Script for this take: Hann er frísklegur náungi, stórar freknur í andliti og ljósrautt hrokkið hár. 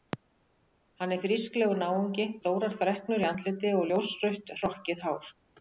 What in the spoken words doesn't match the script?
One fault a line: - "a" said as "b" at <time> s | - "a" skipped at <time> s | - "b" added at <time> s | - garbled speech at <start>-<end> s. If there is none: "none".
none